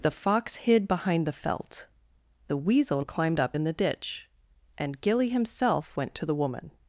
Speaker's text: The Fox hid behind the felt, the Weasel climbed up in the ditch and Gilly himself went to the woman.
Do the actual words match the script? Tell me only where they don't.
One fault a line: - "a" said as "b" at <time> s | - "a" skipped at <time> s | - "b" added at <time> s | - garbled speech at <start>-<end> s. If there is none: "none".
none